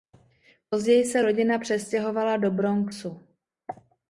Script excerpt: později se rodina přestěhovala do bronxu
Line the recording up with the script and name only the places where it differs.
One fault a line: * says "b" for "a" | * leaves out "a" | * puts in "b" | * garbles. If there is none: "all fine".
all fine